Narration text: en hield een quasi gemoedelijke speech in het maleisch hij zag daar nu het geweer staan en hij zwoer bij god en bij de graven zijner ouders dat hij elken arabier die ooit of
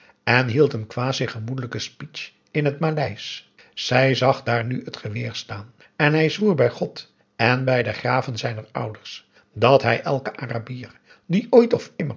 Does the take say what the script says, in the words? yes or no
no